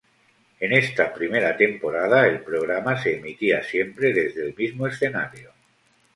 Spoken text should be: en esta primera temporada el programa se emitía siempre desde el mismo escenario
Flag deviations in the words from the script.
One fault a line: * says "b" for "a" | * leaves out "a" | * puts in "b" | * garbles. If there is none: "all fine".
all fine